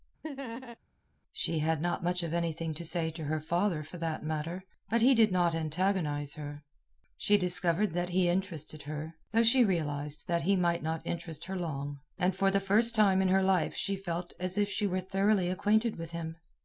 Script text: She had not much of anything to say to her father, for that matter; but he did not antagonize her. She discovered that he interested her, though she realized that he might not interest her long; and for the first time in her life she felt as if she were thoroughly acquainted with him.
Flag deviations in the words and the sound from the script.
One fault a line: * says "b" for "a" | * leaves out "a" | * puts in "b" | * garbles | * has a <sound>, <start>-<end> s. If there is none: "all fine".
* has a laugh, 0.2-0.8 s